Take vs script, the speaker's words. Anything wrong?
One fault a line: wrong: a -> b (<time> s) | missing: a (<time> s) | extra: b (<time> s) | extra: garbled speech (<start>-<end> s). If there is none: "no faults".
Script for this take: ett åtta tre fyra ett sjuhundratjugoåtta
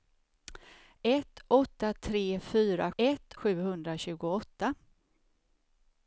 no faults